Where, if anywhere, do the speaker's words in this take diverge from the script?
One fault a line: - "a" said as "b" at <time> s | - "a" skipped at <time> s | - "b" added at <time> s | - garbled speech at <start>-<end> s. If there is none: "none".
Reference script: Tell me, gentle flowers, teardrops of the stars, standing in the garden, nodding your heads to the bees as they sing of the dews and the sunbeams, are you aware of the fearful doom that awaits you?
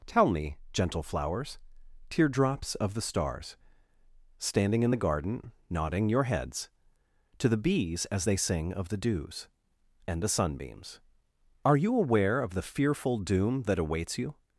none